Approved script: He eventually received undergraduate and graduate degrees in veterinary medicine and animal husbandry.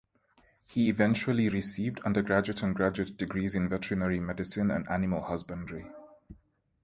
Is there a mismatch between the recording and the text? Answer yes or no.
no